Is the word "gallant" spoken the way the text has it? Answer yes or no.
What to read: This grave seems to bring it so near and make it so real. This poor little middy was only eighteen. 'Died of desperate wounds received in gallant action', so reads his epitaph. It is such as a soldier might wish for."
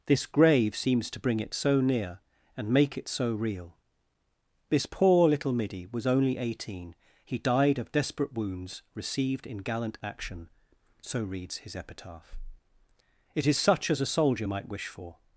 yes